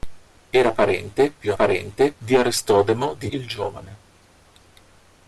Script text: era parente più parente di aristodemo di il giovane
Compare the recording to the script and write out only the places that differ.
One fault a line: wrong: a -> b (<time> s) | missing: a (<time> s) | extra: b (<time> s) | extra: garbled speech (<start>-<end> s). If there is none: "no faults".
no faults